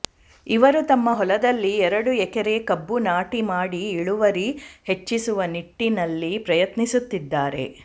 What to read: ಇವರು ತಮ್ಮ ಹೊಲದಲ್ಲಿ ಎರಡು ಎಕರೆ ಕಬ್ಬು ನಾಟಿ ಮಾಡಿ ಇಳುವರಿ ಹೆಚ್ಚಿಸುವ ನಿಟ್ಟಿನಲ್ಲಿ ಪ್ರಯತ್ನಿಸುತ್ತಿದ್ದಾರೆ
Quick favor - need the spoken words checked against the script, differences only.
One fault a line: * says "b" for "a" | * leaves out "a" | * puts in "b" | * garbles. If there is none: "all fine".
all fine